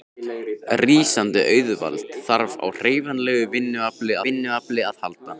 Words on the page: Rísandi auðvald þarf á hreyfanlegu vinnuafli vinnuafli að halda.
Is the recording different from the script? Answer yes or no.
no